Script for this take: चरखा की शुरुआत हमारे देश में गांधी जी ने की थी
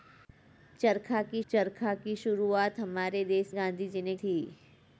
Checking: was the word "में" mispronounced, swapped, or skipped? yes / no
yes